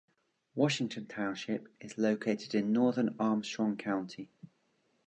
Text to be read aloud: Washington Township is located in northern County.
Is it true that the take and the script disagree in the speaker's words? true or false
true